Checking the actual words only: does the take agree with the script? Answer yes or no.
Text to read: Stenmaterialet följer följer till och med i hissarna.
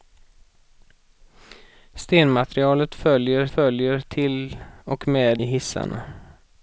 yes